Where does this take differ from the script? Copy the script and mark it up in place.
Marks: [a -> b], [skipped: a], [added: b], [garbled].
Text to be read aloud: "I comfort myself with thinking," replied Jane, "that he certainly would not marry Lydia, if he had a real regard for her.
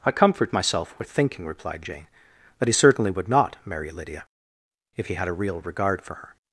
"I comfort myself with thinking," replied Jane, "that he certainly would not marry Lydia, if he had a real regard for her.